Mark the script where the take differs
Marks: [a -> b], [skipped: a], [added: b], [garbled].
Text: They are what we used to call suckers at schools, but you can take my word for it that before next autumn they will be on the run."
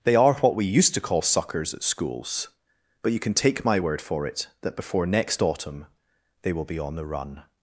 They are what we used to call suckers at schools, but you can take my word for it that before next autumn they will be on the run."